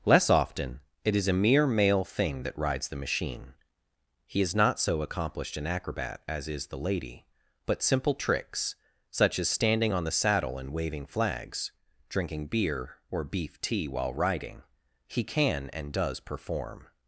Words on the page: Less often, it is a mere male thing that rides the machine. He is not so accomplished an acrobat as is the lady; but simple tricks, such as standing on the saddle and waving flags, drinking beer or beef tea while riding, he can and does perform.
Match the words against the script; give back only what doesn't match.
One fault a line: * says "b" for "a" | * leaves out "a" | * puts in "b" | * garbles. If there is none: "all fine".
all fine